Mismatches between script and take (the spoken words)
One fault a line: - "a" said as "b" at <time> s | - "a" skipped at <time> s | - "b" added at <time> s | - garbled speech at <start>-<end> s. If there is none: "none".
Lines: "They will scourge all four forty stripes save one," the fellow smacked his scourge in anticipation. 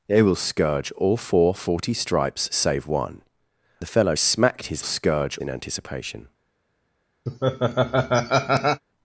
none